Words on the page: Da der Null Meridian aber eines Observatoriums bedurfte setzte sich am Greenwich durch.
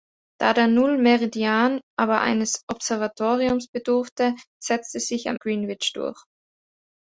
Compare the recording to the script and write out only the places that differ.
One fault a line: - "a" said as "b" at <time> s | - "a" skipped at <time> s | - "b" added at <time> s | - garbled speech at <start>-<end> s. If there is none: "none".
none